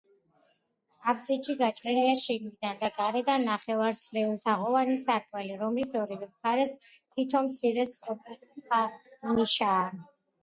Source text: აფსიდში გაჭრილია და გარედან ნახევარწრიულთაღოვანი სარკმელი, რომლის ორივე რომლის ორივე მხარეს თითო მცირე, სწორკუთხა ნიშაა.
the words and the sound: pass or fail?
fail